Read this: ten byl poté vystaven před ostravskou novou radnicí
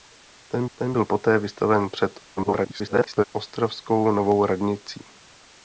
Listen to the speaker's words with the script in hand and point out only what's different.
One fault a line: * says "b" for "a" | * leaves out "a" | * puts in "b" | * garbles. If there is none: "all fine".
* puts in "ten"
* garbles